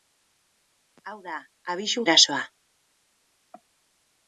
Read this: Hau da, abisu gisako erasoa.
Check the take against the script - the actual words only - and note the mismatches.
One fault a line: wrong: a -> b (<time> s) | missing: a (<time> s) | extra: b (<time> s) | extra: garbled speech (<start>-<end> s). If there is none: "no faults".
missing: gisako (2.0 s)